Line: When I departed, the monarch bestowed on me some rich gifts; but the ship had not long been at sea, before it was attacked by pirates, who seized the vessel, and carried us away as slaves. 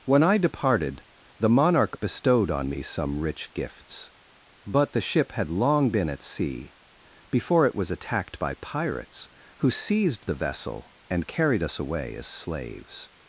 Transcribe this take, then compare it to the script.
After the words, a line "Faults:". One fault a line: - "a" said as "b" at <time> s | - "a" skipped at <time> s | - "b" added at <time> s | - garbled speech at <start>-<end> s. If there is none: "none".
When I departed, the monarch bestowed on me some rich gifts; but the ship had long been at sea, before it was attacked by pirates, who seized the vessel, and carried us away as slaves.
Faults:
- "not" skipped at 5.5 s